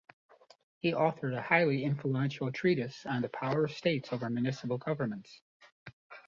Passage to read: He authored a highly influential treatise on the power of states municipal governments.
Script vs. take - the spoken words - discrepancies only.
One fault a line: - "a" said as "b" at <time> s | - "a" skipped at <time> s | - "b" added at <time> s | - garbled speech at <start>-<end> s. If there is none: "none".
- "over" added at 4.1 s